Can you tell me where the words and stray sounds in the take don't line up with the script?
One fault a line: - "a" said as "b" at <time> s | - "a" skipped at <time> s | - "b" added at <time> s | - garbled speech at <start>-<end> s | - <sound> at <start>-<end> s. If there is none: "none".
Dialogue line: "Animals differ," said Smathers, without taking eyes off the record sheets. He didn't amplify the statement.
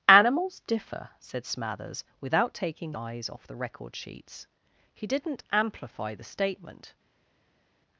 none